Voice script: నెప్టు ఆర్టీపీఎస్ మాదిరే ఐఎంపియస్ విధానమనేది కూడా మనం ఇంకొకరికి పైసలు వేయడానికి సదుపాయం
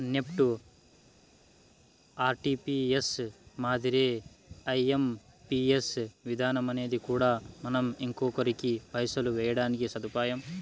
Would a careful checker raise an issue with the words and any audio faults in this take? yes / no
no